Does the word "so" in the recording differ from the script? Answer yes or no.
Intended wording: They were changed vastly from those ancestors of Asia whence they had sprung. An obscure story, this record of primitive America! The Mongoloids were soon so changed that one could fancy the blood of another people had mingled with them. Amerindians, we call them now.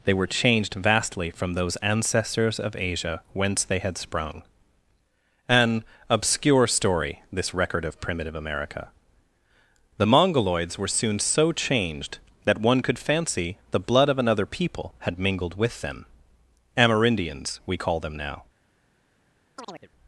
no